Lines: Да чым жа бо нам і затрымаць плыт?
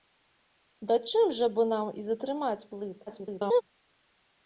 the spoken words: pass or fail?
fail